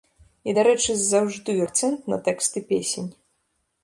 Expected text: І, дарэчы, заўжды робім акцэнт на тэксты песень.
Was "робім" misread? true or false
true